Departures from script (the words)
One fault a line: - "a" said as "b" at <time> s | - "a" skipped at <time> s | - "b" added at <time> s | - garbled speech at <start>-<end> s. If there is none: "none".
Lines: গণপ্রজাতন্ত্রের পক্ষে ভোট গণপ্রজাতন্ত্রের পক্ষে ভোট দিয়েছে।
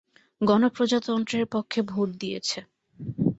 - "গণপ্রজাতন্ত্রের পক্ষে ভোট" skipped at 2.1 s